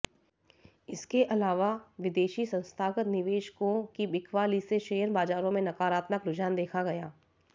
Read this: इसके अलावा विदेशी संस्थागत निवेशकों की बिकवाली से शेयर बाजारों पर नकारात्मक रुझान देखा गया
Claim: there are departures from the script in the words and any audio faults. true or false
true